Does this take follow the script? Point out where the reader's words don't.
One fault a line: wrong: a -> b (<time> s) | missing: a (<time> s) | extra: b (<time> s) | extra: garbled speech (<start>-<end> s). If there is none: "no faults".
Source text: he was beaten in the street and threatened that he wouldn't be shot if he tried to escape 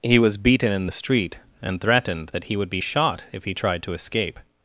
wrong: wouldn't -> would (2.6 s)